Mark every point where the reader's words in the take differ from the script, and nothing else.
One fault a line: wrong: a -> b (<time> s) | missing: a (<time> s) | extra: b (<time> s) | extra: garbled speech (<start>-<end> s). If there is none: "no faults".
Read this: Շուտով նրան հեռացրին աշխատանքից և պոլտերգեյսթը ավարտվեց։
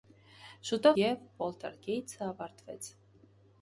missing: նրան հեռացրին աշխատանքից (0.9 s)